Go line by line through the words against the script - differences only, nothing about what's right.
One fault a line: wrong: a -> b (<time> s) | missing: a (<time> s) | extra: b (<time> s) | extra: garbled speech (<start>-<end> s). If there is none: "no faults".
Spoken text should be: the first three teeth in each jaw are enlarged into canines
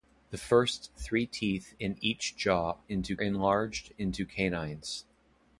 wrong: are -> into (2.9 s)